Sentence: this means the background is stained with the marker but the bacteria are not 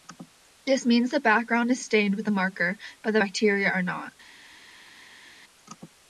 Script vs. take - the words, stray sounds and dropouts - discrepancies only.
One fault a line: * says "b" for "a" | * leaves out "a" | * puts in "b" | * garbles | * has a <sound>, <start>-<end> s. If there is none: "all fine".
all fine